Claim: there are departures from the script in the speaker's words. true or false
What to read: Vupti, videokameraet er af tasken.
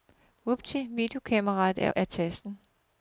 false